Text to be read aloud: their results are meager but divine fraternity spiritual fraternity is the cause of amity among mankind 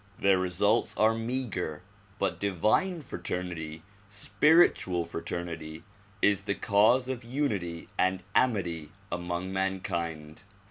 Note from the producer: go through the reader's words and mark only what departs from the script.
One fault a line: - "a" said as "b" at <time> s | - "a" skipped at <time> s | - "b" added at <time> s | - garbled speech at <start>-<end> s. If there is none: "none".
- "unity and" added at 7.2 s